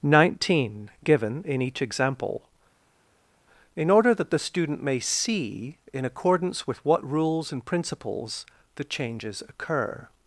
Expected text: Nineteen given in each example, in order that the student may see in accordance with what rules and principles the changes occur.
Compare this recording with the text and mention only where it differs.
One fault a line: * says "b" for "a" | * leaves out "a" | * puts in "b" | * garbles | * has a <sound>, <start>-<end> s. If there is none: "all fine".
all fine